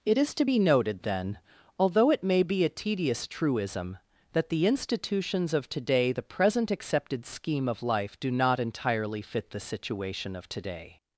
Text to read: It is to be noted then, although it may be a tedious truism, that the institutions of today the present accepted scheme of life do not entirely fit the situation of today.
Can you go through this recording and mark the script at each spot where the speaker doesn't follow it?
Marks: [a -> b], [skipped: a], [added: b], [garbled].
It is to be noted then, although it may be a tedious truism, that the institutions of today the present accepted scheme of life do not entirely fit the situation of today.